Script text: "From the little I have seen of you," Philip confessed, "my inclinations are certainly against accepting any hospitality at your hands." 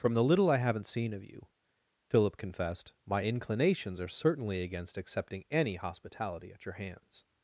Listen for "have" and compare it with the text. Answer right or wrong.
wrong